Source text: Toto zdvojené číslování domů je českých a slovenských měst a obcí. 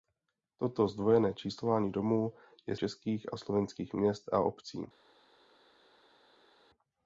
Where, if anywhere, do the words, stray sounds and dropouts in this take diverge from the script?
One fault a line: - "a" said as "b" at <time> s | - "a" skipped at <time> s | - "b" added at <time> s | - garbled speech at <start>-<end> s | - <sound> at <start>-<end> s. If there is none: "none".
none